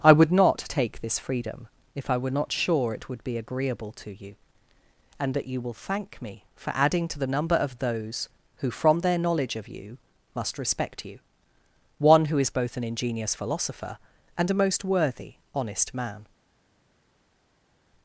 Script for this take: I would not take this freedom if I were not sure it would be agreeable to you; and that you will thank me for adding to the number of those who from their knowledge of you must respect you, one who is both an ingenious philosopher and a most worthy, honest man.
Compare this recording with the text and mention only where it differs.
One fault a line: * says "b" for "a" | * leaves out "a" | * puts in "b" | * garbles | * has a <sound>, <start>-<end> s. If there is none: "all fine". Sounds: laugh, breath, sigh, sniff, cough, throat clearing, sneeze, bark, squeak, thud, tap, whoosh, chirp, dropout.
all fine